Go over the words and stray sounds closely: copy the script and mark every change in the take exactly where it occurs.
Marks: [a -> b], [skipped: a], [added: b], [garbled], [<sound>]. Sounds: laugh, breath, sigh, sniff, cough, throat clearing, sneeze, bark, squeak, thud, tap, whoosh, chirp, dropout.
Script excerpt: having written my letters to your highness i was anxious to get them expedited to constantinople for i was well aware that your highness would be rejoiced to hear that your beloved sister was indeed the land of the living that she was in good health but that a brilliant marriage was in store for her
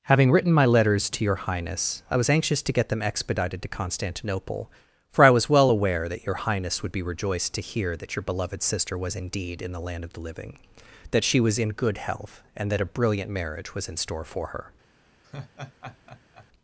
having written my letters to your highness i was anxious to get them expedited to constantinople for i was well aware that your highness would be rejoiced to hear that your beloved sister was indeed [added: in] the land of the living that she was in good health [but -> and] that a brilliant marriage was in store for her [laugh]